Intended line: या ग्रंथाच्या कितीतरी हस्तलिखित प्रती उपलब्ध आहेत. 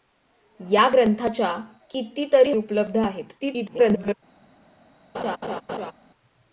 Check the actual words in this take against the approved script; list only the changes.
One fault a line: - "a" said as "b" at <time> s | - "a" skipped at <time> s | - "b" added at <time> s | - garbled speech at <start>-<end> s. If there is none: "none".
- "हस्तलिखित प्रती" skipped at 2.5 s
- garbled speech at 3.4-4.1 s